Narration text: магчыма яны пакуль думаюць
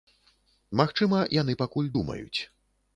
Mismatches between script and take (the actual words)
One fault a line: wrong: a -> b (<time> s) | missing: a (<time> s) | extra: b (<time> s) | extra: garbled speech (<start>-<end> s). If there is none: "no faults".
no faults